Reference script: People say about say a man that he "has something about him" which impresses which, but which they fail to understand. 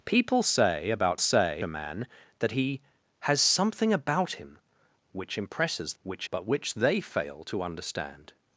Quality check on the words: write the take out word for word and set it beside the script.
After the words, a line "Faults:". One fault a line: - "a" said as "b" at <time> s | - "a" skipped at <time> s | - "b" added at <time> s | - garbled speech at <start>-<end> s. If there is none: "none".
People say about say a man that he "has something about him" which impresses which, but which they fail to understand.
Faults:
none